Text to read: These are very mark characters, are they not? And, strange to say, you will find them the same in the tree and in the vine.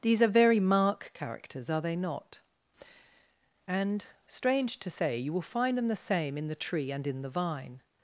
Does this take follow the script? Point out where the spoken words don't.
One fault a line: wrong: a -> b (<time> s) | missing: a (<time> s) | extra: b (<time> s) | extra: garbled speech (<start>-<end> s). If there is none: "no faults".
no faults